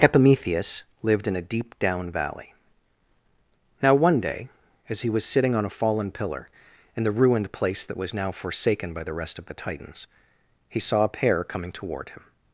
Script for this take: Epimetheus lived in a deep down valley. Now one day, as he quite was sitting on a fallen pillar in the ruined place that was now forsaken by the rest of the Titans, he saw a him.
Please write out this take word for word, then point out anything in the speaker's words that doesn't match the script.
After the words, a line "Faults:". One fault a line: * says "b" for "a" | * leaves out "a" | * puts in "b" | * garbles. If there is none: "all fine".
Epimetheus lived in a deep down valley. Now one day, as he was sitting on a fallen pillar in the ruined place that was now forsaken by the rest of the Titans, he saw a pair coming toward him.
Faults:
* leaves out "quite"
* puts in "pair coming toward"